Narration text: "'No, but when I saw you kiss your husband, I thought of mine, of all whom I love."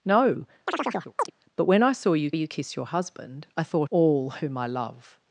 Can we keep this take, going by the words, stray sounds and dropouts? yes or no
no